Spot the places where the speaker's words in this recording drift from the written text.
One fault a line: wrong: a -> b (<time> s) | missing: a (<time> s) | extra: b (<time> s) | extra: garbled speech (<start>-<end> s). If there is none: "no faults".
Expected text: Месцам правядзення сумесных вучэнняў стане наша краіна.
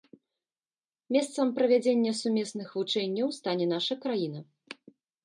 no faults